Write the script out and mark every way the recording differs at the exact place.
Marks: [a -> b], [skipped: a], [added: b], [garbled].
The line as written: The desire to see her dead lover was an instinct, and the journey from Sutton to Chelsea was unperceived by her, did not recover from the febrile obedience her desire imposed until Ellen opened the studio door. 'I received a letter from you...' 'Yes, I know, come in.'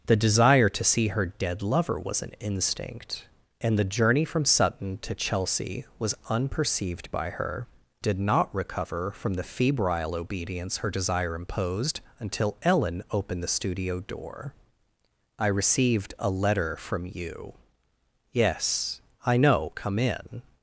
The desire to see her dead lover was an instinct, and the journey from Sutton to Chelsea was unperceived by her, did not recover from the febrile obedience her desire imposed until Ellen opened the studio door. 'I received a letter from you...' 'Yes, I know, come in.'